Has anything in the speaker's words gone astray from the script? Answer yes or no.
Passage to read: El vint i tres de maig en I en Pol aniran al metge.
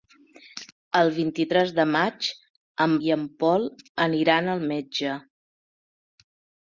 no